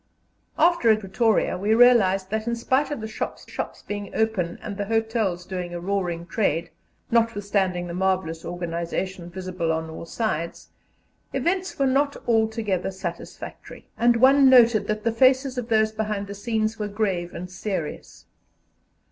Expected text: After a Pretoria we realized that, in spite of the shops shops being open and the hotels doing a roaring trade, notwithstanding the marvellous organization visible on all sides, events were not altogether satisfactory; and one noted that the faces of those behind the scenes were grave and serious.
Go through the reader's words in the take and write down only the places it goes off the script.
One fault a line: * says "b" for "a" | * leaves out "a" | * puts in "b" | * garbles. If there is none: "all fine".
all fine